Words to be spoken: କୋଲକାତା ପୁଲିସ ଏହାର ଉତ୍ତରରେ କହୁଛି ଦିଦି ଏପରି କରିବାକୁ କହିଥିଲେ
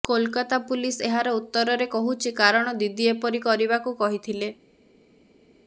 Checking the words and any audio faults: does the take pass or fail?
fail